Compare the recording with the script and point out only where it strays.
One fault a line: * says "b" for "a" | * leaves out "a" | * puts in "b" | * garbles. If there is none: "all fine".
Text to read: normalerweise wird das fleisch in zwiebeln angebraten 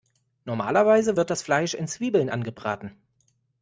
all fine